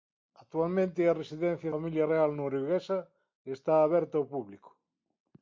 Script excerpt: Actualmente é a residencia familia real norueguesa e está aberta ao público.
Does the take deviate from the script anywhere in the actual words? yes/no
no